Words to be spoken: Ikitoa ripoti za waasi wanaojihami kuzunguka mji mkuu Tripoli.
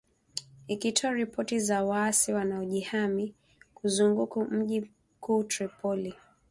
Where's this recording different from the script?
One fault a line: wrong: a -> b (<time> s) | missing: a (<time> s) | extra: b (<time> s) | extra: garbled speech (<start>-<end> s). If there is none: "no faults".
no faults